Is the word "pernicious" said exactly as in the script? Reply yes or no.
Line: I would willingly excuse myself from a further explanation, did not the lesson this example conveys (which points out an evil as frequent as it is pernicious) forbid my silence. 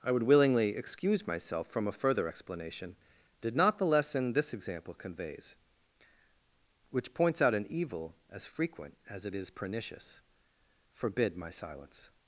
yes